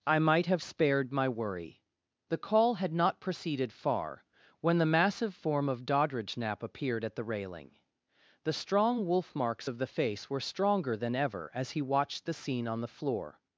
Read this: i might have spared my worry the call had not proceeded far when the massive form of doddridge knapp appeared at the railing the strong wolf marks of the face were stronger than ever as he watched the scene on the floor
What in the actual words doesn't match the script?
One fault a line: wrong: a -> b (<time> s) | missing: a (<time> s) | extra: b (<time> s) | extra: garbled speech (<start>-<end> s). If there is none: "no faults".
no faults